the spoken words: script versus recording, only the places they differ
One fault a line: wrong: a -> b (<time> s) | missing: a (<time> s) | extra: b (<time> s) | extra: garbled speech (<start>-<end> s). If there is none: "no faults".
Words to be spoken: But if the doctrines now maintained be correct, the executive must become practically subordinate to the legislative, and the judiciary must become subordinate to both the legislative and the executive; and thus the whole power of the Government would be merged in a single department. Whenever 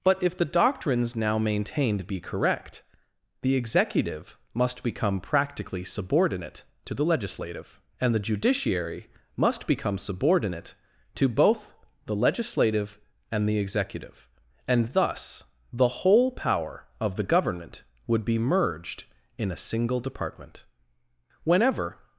no faults